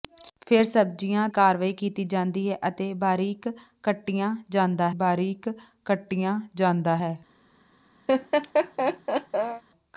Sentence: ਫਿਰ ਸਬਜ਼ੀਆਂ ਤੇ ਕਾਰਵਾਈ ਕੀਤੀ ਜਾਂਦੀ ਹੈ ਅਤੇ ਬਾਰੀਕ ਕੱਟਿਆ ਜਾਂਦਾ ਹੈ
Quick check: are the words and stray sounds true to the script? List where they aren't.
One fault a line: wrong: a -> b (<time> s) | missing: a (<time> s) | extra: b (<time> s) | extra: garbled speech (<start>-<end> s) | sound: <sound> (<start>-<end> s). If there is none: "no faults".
missing: ਤੇ (1.3 s)
extra: ਬਾਰੀਕ ਕੱਟਿਆ ਜਾਂਦਾ (4.9 s)
sound: laugh (8.1-9.6 s)